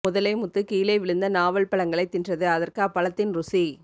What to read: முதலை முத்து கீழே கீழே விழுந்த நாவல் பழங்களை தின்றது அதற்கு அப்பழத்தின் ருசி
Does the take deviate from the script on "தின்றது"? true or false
false